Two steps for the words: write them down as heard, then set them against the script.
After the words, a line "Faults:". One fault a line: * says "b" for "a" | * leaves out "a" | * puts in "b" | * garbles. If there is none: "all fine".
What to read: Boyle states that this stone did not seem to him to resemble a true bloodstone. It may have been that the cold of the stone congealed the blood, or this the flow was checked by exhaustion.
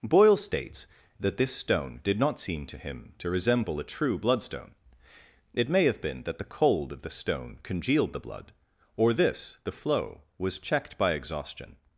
Boyle states that this stone did not seem to him to resemble a true bloodstone. It may have been that the cold of the stone congealed the blood, or this the flow was checked by exhaustion.
Faults:
all fine